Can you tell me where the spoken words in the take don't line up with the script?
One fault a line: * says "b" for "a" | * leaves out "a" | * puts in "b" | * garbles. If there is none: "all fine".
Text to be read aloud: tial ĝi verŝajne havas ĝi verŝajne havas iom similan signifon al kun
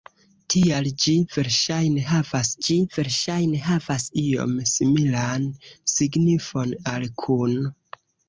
all fine